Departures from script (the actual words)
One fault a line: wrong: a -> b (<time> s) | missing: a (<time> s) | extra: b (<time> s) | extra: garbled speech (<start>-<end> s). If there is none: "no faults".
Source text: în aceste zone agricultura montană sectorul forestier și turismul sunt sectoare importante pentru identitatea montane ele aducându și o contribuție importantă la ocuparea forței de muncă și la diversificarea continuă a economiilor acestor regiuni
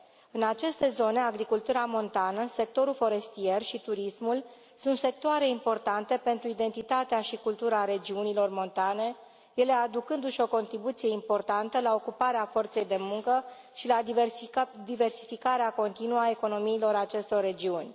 extra: și cultura regiunilor (7.2 s)